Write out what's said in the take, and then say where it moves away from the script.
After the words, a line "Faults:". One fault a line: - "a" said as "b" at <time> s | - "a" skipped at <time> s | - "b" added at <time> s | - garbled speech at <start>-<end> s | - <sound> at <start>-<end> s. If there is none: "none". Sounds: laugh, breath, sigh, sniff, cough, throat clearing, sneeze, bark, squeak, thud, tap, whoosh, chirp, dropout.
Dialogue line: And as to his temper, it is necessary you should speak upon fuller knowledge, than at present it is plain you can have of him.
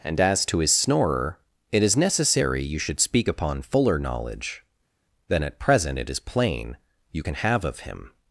And as to his snorer, it is necessary you should speak upon fuller knowledge, than at present it is plain you can have of him.
Faults:
- "temper" said as "snorer" at 0.7 s